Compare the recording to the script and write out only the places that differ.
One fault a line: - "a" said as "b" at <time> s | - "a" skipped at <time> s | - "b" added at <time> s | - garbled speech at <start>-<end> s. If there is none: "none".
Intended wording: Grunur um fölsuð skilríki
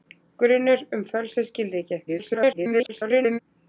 - garbled speech at 2.1-3.4 s